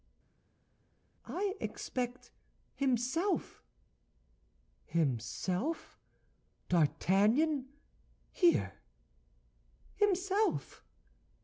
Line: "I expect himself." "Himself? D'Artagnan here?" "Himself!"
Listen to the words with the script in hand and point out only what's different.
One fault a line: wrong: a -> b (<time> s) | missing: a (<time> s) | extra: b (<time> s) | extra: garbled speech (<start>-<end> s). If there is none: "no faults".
no faults